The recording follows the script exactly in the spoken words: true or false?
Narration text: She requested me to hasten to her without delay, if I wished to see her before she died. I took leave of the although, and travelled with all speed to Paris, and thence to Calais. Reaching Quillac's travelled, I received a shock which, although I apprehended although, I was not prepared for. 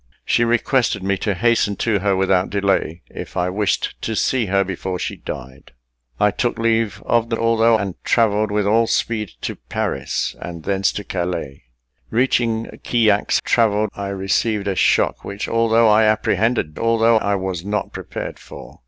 true